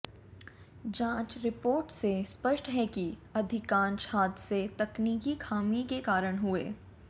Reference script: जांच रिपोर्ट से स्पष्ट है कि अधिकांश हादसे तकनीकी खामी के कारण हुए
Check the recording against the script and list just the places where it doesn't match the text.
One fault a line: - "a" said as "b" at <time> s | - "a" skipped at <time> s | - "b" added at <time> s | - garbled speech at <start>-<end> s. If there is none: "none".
none